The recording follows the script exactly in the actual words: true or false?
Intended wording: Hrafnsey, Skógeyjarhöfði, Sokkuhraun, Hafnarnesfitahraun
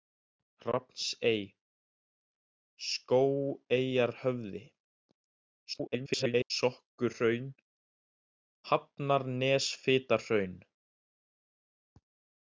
false